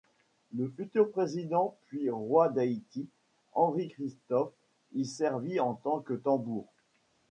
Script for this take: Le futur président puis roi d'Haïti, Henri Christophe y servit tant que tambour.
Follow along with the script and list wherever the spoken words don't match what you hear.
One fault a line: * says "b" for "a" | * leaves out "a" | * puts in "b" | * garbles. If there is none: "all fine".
* puts in "en"